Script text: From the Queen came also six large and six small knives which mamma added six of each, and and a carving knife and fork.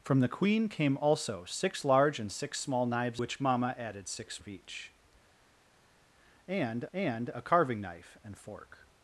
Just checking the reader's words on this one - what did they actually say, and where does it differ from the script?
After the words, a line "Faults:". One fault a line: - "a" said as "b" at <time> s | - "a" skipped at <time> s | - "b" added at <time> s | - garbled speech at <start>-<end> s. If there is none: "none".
From the Queen came also six large and six small knives which mamma added six of each, and and a carving knife and fork.
Faults:
none